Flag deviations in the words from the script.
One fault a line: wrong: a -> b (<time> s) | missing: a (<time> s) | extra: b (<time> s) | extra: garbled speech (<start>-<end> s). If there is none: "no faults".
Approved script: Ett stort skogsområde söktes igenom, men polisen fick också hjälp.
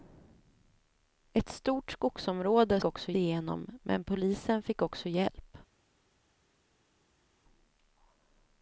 wrong: söktes -> också (2.8 s)